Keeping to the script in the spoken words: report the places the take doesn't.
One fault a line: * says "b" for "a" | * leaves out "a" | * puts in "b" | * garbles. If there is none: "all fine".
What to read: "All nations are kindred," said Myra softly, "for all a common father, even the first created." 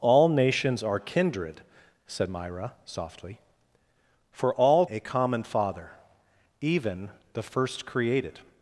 all fine